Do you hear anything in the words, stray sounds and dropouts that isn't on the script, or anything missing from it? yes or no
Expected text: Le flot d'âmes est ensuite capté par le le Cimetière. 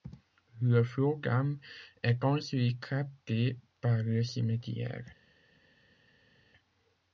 yes